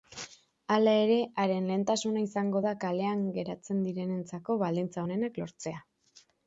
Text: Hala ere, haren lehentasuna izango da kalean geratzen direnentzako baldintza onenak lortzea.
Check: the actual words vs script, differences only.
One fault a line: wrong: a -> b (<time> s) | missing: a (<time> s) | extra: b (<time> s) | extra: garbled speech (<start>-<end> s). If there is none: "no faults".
no faults